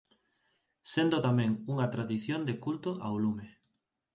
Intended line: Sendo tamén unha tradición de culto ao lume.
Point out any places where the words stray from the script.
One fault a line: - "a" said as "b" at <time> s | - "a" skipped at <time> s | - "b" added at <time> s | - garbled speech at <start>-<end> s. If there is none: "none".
none